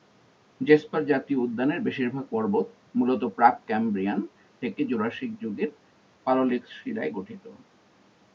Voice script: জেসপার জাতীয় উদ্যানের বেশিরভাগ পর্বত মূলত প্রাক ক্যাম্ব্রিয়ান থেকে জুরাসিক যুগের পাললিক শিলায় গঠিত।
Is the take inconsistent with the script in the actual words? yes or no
no